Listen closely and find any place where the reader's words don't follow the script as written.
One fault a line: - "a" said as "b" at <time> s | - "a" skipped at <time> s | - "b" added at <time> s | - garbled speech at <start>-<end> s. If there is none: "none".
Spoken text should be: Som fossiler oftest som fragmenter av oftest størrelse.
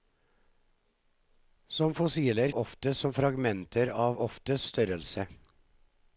none